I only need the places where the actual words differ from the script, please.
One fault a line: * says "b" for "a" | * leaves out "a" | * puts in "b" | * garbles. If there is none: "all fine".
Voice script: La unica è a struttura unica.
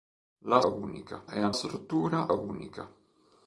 all fine